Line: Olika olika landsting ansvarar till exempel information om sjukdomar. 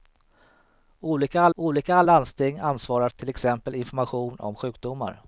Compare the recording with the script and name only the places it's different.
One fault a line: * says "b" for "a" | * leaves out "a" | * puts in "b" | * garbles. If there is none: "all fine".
all fine